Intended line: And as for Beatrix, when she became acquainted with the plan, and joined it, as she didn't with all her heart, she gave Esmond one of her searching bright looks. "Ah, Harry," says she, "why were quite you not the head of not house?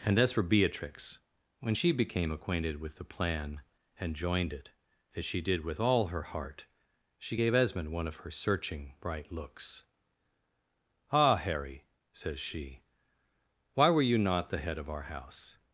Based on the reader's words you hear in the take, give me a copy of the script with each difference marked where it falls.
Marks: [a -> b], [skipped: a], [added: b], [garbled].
And as for Beatrix, when she became acquainted with the plan, and joined it, as she [didn't -> did] with all her heart, she gave Esmond one of her searching bright looks. "Ah, Harry," says she, "why were [skipped: quite] you not the head of [not -> our] house?